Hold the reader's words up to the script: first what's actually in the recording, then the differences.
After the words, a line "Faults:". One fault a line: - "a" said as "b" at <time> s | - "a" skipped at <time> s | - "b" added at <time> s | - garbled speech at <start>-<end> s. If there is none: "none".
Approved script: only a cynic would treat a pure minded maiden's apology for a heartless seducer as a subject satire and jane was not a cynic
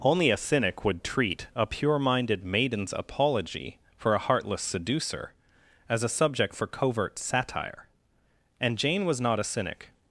only a cynic would treat a pure minded maiden's apology for a heartless seducer as a subject for covert satire and jane was not a cynic
Faults:
- "for covert" added at 6.5 s